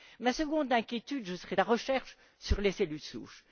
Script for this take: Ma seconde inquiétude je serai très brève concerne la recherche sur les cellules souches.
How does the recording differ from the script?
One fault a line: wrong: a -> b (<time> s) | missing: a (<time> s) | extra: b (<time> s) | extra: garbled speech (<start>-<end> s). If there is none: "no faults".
missing: très brève concerne (1.6 s)